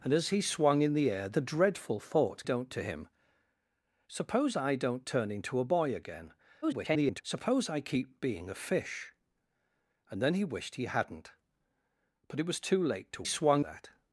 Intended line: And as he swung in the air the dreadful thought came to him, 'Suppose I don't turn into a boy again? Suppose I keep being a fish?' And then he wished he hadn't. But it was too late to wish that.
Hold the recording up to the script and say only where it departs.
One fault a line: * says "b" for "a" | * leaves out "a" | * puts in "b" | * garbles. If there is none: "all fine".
* says "don't" for "came"
* garbles
* says "swung" for "wish"